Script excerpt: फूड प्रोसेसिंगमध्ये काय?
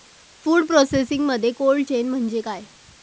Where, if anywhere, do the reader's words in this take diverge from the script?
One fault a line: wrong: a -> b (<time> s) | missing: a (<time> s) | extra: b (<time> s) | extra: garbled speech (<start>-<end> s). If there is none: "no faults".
extra: कोल्ड चेन म्हणजे (1.5 s)